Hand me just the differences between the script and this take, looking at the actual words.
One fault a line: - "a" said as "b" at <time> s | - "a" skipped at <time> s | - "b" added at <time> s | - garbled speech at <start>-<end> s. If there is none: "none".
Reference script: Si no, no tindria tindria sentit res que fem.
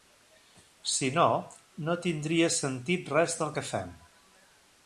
- "tindria" skipped at 2.5 s
- "del" added at 3.4 s